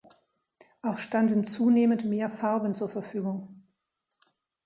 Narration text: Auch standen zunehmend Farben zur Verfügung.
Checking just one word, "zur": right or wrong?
right